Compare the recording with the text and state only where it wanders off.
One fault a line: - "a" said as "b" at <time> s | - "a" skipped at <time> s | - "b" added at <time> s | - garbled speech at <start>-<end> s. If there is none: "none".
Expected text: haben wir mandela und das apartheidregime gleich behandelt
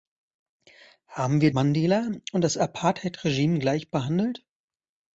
none